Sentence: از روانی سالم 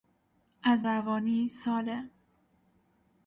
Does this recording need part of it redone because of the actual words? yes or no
no